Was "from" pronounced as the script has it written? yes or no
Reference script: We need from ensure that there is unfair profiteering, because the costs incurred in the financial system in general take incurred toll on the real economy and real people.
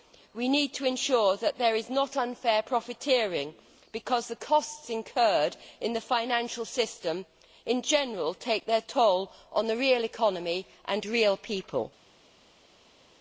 no